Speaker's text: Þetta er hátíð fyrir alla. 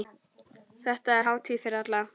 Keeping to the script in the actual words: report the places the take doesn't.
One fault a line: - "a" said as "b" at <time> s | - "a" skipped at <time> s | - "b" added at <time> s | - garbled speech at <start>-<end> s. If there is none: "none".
none